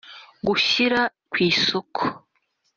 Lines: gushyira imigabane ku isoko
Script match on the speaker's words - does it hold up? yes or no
no